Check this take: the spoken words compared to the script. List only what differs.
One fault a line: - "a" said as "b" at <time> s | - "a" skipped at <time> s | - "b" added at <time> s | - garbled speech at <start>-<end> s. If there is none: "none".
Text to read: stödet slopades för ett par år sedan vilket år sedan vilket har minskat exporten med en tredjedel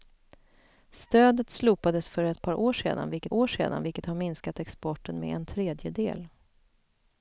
none